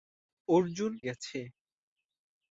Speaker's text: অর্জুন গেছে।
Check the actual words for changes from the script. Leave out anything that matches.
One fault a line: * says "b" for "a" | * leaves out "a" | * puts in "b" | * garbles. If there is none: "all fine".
all fine